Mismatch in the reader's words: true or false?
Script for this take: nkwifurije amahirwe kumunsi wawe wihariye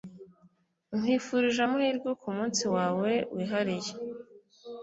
false